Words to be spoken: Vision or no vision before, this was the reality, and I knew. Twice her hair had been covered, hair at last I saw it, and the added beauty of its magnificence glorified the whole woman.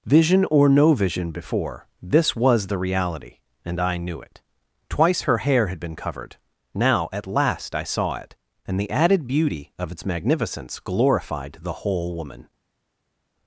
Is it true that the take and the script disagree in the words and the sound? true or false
true